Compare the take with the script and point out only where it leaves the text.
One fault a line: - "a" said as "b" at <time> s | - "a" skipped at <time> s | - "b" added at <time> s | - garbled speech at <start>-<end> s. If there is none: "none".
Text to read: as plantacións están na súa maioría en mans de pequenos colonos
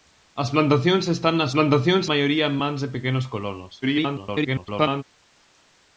- "súa" said as "plantacións" at 1.5 s
- garbled speech at 3.8-5.0 s